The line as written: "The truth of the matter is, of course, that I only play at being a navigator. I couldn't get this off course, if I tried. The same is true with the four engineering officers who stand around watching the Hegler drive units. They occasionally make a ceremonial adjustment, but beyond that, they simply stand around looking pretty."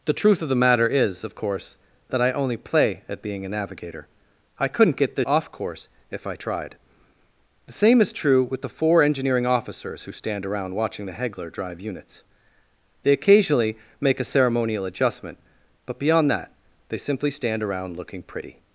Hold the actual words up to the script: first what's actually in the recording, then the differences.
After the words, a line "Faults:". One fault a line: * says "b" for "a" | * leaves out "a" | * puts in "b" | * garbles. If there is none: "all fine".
"The truth of the matter is, of course, that I only play at being a navigator. I couldn't get this off course, if I tried. The same is true with the four engineering officers who stand around watching the Hegler drive units. They occasionally make a ceremonial adjustment, but beyond that, they simply stand around looking pretty."
Faults:
all fine